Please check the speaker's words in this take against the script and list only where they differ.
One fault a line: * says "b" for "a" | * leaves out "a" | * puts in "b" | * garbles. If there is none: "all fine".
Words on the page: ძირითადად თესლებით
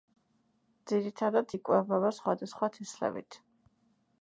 * puts in "იკვებება სხვადასხვა"